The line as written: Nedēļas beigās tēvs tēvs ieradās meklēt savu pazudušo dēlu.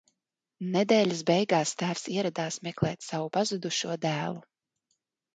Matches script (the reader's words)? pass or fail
fail